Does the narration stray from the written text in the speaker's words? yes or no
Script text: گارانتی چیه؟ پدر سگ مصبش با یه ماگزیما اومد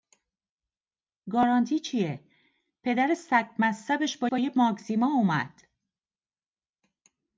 yes